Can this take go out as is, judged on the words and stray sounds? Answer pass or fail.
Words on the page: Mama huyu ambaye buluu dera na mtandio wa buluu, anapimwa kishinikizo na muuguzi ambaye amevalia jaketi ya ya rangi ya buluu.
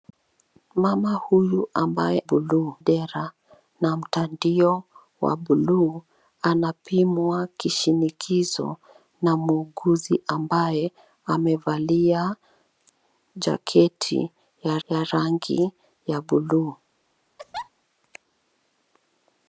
fail